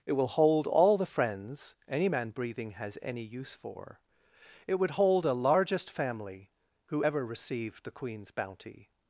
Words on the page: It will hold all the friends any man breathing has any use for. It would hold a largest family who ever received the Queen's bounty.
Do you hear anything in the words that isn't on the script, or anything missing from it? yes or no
no